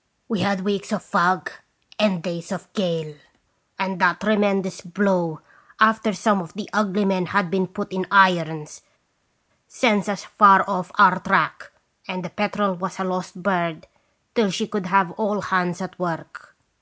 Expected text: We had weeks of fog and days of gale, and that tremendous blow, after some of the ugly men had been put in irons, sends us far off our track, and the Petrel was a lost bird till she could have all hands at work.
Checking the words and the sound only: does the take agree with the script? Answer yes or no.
yes